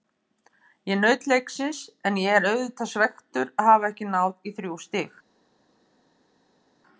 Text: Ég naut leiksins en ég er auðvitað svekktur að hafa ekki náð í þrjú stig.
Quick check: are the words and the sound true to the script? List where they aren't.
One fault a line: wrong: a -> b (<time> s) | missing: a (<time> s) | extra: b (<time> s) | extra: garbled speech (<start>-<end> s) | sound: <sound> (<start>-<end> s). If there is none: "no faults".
no faults